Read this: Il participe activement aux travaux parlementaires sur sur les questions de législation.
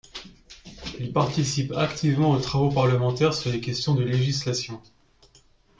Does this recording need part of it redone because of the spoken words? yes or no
yes